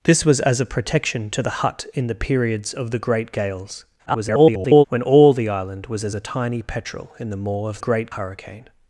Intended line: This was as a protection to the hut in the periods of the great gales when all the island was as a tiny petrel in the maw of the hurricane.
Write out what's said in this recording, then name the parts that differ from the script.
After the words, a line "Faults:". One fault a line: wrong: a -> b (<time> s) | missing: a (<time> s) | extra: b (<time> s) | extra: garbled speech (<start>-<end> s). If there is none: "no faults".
This was as a protection to the hut in the periods of the great gales [garbled] when all the island was as a tiny petrel in the maw of great hurricane.
Faults:
extra: garbled speech (4.1-4.8 s)
wrong: the -> great (7.8 s)